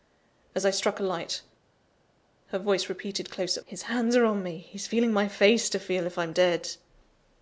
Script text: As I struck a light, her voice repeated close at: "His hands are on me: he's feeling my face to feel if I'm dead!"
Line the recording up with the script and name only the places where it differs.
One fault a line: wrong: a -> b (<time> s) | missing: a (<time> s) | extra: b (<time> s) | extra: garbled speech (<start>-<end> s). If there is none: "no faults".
no faults